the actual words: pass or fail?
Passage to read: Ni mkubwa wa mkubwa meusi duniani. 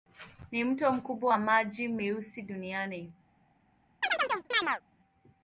fail